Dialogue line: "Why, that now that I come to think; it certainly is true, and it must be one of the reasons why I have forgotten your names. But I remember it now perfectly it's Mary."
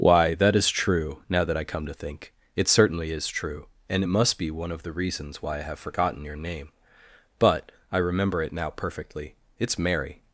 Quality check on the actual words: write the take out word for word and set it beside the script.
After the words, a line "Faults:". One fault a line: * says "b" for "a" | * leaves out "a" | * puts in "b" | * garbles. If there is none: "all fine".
"Why, that is true, now that I come to think; it certainly is true, and it must be one of the reasons why I have forgotten your name. But I remember it now perfectly it's Mary."
Faults:
* puts in "is true"
* says "name" for "names"